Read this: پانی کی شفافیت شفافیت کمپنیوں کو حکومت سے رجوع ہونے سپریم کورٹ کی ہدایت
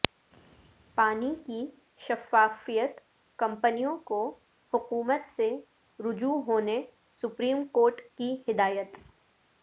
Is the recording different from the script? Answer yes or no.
yes